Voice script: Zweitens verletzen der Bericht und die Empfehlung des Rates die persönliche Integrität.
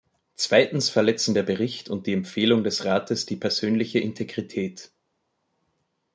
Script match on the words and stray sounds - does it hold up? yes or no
yes